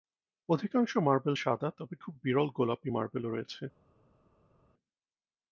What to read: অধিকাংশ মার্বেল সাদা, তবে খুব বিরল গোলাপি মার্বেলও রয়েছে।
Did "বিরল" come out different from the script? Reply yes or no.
no